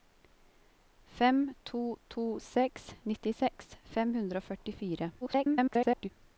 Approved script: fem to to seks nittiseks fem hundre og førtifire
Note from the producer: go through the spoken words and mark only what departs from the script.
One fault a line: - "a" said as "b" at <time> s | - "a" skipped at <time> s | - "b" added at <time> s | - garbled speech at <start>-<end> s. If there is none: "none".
- garbled speech at 5.2-6.1 s